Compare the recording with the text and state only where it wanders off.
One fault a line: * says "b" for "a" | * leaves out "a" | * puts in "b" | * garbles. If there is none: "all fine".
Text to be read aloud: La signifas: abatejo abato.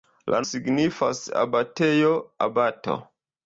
all fine